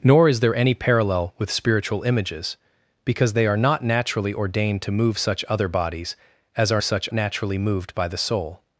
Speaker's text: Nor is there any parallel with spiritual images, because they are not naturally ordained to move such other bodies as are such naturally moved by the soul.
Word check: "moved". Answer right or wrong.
right